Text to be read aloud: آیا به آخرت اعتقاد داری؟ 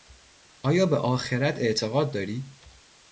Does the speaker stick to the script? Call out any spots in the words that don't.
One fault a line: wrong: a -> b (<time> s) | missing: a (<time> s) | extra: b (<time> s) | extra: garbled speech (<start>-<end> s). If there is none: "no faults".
no faults